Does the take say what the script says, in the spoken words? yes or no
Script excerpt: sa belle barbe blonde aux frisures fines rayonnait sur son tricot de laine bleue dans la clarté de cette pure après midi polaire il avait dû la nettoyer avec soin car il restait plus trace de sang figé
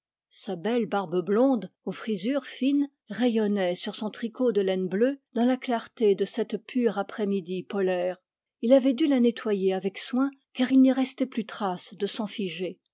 no